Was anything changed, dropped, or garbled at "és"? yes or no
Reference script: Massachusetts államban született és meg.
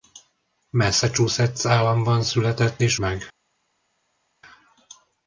no